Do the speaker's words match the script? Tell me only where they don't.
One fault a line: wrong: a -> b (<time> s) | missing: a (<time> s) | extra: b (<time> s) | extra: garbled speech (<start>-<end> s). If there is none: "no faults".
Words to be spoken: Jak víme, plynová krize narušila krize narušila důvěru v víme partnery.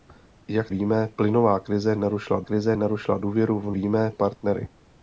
no faults